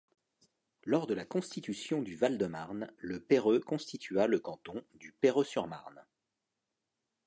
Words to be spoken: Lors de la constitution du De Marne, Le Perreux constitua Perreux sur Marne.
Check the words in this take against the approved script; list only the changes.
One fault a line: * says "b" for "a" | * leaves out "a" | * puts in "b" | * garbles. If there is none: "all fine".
* puts in "Val"
* puts in "le canton du"